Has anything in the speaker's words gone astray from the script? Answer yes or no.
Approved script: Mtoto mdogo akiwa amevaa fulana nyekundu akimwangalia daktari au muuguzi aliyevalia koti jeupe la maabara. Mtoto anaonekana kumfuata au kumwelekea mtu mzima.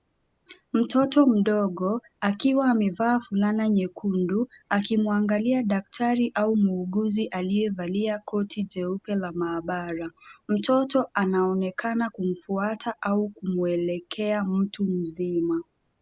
no